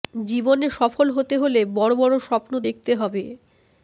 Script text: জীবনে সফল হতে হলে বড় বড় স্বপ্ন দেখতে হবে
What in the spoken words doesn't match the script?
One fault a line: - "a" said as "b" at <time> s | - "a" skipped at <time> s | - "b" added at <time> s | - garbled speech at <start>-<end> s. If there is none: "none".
none